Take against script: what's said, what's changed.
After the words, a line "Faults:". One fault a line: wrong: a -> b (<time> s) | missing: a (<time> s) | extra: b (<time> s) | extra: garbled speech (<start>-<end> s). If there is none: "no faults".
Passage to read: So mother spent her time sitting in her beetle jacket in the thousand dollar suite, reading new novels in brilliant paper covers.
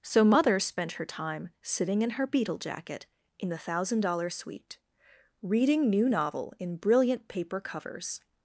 So mother spent her time sitting in her beetle jacket in the thousand dollar suite, reading new novel in brilliant paper covers.
Faults:
wrong: novels -> novel (6.1 s)